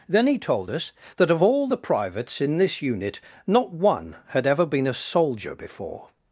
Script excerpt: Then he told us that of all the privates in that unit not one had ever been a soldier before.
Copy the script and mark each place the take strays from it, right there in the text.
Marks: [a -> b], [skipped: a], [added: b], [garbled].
Then he told us that of all the privates in [that -> this] unit not one had ever been a soldier before.